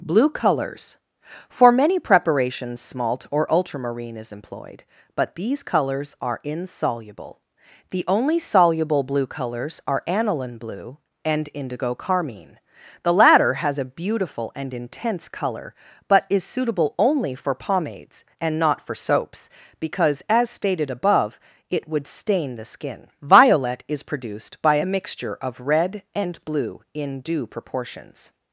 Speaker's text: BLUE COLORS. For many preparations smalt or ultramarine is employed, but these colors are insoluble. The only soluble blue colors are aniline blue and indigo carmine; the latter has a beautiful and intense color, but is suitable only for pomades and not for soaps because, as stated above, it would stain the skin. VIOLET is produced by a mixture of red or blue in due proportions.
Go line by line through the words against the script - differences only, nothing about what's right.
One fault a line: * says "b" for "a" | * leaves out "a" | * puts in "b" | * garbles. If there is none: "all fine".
* says "and" for "or"